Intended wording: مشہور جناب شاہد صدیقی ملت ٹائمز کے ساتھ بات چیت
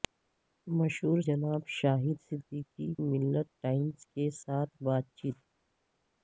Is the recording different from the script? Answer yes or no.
no